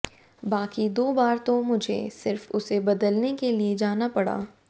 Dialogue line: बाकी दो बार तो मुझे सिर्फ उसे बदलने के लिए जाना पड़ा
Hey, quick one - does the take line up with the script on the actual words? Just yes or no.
yes